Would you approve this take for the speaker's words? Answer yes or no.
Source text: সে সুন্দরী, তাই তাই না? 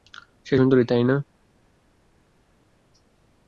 no